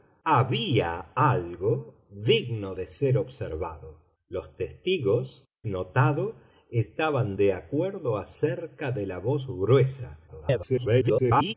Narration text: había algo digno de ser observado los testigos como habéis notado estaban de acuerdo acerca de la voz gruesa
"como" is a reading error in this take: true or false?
true